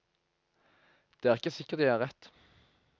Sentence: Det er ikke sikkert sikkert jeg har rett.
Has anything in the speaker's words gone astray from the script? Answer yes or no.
yes